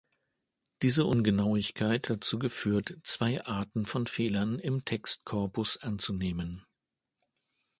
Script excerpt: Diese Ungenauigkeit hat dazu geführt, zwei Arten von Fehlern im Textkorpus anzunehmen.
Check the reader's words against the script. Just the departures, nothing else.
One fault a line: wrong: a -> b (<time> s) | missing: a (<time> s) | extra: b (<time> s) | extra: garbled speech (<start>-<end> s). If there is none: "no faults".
missing: hat (2.1 s)